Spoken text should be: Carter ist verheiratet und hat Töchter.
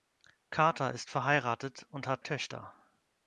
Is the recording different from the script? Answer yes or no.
no